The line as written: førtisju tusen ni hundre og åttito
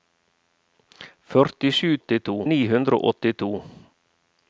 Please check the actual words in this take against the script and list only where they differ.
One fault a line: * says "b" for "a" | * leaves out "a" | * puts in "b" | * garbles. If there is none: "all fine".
* says "åttito" for "tusen"